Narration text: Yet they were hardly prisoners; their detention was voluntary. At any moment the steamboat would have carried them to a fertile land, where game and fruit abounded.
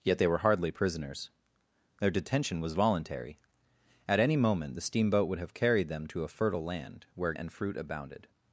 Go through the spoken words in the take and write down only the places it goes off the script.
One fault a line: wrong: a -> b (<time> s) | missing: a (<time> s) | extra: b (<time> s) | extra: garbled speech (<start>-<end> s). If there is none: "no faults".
missing: game (7.3 s)